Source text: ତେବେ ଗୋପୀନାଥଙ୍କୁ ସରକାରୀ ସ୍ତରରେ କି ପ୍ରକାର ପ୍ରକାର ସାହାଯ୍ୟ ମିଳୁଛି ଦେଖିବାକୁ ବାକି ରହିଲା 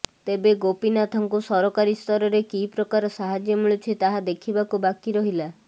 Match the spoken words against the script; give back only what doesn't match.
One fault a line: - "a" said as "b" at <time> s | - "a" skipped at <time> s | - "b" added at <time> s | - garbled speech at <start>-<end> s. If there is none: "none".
- "ପ୍ରକାର" skipped at 3.1 s
- "ତାହା" added at 4.0 s